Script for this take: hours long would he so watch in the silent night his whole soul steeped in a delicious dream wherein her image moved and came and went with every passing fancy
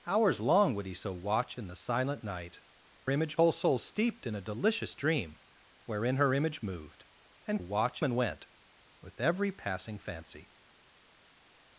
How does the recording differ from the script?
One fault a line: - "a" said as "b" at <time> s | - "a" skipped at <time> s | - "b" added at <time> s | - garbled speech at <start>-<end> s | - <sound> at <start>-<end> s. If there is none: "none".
- "his" said as "image" at 3.1 s
- "came" said as "watch" at 7.6 s